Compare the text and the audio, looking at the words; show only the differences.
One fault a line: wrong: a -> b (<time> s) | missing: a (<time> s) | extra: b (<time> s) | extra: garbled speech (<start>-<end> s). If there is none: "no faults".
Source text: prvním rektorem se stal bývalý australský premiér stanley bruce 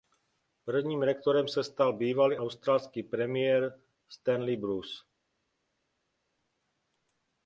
no faults